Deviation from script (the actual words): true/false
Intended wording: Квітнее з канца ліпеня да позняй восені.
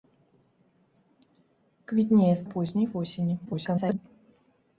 true